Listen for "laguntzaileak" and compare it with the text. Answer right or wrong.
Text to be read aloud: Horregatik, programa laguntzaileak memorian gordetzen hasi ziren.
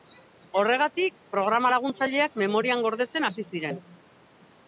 right